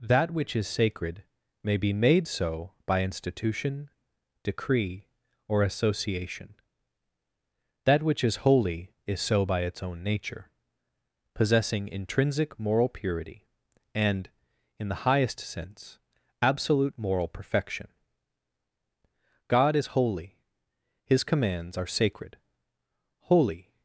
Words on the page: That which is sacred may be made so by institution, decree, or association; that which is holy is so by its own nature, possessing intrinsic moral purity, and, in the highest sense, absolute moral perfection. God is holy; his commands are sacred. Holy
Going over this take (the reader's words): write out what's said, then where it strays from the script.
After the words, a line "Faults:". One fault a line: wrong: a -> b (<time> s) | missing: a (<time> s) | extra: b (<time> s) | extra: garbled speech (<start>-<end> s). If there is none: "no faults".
That which is sacred may be made so by institution, decree, or association; that which is holy is so by its own nature, possessing intrinsic moral purity, and, in the highest sense, absolute moral perfection. God is holy; his commands are sacred. Holy
Faults:
no faults